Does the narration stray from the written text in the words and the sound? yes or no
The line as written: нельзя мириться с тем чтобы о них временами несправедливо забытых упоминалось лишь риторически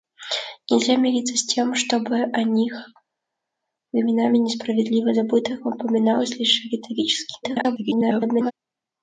yes